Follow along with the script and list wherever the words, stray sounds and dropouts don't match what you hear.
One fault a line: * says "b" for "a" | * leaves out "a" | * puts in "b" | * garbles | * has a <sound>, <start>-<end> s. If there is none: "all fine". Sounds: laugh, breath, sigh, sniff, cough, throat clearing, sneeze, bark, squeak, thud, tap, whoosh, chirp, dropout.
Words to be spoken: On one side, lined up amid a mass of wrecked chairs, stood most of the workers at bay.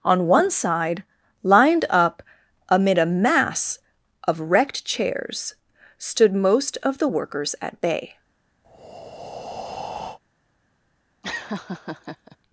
* has a breath, 8.6-10.2 s
* has a laugh, 11.2-12.4 s